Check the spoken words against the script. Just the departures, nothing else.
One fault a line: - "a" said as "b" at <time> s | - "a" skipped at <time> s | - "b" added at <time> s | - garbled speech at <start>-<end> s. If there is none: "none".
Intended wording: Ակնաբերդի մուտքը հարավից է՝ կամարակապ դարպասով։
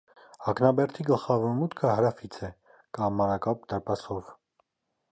- "գլխավոր" added at 1.1 s